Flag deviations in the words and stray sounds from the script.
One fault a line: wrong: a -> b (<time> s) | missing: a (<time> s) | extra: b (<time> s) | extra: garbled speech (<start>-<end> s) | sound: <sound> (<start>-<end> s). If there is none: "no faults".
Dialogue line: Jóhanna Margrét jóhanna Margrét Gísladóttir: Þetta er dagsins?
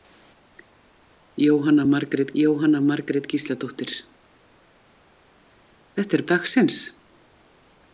no faults